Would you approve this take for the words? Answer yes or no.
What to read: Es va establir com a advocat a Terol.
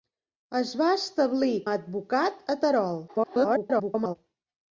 no